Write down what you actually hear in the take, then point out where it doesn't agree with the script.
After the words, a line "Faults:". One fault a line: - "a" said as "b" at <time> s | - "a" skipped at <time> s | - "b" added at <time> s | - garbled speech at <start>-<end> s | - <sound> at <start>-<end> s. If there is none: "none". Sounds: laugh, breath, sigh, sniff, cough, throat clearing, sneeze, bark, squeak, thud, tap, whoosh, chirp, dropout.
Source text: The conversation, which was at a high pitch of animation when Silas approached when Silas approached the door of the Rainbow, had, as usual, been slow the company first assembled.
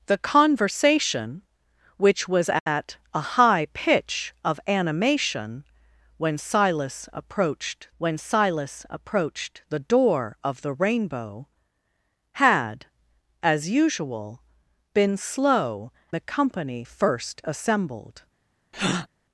The conversation, which was at a high pitch of animation when Silas approached when Silas approached the door of the Rainbow, had, as usual, been slow the company first assembled.
Faults:
- breath at 18.7-19.1 s